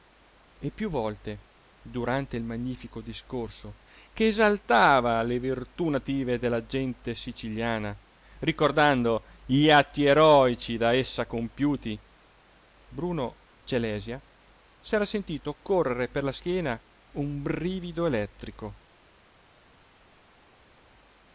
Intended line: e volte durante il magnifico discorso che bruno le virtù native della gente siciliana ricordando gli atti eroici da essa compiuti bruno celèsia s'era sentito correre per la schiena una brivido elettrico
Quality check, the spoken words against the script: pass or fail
fail